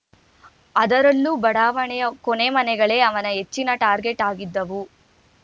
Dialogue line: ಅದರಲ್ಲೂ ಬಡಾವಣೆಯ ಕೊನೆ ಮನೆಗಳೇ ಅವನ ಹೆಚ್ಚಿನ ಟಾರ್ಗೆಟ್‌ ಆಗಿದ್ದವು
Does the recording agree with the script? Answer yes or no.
yes